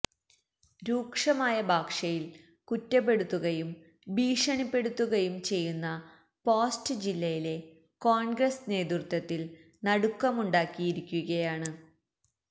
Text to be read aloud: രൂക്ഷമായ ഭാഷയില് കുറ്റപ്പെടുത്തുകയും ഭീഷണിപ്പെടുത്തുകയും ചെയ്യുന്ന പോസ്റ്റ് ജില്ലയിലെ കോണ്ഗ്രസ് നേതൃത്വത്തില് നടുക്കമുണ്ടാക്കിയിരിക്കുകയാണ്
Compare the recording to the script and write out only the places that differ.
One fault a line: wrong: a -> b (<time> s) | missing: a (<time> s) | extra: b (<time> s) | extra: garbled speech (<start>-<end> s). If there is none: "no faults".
no faults